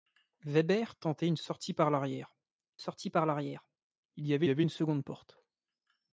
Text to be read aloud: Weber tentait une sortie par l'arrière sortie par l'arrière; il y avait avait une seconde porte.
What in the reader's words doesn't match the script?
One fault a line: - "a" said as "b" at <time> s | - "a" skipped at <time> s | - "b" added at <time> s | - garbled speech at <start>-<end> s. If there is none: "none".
none